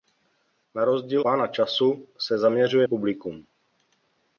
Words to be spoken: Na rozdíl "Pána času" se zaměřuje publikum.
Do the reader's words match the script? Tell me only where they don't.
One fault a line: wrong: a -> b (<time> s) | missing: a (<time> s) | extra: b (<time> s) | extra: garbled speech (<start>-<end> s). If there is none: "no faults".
no faults